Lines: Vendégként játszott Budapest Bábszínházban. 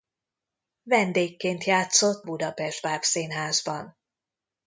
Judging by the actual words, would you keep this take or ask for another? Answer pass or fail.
pass